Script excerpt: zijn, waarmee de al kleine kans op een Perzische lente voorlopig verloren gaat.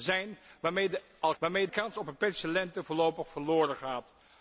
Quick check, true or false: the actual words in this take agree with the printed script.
false